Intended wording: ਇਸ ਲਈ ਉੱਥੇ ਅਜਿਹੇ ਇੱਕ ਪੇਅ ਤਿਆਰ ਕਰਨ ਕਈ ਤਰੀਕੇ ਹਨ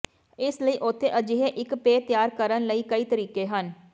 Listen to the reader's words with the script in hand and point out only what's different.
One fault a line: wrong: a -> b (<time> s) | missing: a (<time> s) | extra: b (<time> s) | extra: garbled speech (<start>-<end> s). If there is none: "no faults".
extra: ਲਈ (2.7 s)